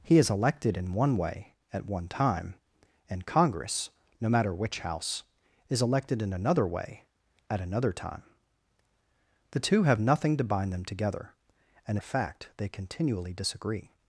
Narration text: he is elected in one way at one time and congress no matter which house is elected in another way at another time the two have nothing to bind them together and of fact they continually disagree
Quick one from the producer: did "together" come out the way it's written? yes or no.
yes